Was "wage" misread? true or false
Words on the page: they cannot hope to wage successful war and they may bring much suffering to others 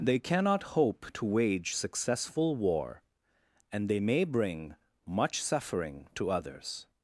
false